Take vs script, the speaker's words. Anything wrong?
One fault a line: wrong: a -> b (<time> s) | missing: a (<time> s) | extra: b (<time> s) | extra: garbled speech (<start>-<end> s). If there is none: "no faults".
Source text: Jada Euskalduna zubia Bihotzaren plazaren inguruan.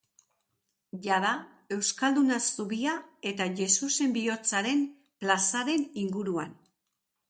extra: eta Jesusen (3.4 s)